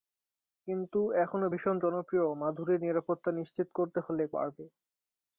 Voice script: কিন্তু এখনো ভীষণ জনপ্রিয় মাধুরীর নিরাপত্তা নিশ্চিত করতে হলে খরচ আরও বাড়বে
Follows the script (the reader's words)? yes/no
no